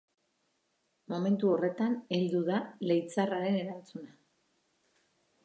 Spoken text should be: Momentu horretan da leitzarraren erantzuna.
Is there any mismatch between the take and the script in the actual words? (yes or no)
yes